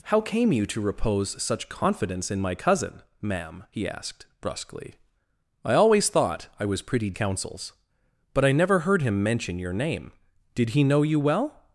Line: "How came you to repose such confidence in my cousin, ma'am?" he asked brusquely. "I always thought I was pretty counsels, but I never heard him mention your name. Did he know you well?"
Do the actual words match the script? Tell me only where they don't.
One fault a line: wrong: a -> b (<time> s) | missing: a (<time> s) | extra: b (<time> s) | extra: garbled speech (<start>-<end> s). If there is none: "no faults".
no faults